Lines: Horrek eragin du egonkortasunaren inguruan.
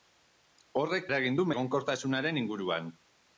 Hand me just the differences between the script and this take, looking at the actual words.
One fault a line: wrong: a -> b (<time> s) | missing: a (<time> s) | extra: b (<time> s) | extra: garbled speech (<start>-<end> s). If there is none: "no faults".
no faults